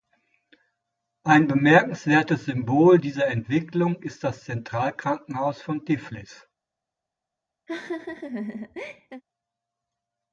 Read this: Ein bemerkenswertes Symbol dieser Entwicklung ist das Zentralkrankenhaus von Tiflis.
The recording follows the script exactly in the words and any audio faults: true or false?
false